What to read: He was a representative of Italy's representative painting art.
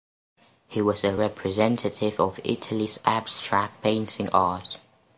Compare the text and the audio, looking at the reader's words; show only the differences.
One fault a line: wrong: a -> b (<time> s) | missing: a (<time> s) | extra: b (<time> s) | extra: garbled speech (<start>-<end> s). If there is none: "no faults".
wrong: representative -> abstract (3.0 s)